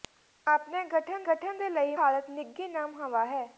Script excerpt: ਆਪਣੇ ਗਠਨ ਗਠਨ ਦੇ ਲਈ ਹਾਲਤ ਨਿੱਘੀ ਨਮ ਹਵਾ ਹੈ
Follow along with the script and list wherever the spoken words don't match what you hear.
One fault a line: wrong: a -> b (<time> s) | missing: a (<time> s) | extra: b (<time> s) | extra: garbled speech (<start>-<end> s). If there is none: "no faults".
no faults